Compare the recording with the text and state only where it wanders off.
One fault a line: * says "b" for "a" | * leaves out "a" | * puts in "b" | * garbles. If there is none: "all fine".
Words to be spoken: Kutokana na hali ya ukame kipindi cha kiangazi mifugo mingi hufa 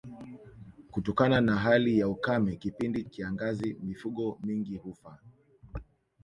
* leaves out "cha"